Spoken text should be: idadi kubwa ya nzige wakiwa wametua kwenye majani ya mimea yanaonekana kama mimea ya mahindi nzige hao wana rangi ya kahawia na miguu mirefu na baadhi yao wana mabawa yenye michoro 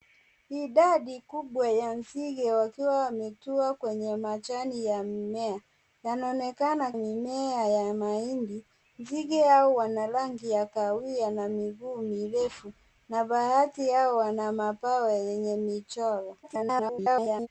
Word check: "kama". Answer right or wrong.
wrong